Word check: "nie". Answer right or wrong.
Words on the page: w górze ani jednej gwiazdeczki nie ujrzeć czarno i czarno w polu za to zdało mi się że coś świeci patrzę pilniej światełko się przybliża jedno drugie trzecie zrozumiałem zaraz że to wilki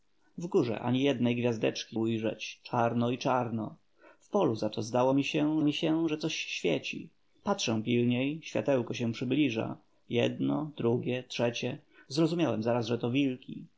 wrong